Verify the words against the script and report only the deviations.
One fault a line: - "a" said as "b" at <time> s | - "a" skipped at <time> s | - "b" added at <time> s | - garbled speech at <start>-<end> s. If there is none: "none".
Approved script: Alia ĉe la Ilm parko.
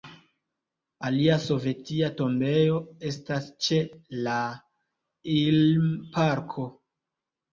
- "sovetia tombejo estas" added at 1.4 s